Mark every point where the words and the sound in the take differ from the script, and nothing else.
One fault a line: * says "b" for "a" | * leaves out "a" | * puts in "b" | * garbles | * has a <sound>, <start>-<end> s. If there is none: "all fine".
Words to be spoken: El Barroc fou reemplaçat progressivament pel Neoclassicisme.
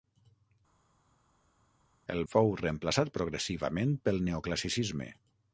* leaves out "Barroc"